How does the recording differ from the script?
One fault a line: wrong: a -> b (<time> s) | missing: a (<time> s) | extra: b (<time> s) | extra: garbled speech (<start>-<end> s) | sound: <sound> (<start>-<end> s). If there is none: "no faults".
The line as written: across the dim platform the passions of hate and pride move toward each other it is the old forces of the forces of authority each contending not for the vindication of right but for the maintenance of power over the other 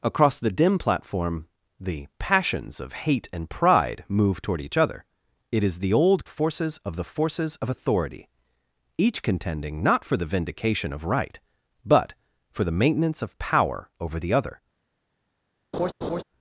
sound: laugh (15.7-16.2 s)